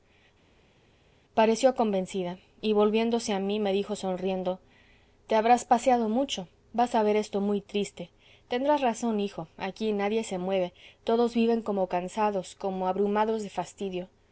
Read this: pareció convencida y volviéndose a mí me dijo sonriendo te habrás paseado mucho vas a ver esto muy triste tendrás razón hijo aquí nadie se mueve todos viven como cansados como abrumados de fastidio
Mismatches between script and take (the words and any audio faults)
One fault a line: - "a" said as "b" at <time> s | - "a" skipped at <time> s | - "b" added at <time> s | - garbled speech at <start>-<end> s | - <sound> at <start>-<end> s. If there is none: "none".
none